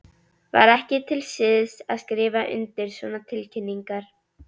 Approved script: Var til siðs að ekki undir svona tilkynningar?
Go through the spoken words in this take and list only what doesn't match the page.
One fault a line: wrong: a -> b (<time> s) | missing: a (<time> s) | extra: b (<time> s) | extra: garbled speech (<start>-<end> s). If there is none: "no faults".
extra: ekki (0.7 s)
wrong: ekki -> skrifa (2.0 s)